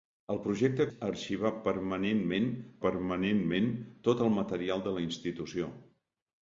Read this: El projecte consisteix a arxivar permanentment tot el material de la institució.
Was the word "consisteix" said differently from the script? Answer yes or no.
yes